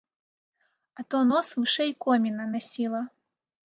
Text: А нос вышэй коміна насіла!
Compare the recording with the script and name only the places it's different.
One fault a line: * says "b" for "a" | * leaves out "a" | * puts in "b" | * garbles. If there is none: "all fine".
* puts in "то"